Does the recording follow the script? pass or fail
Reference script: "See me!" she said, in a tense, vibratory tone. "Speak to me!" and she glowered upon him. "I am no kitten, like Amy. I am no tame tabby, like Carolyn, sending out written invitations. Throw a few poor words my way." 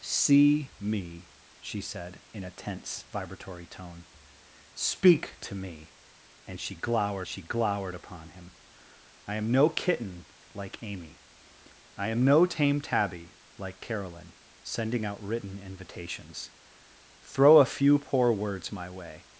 fail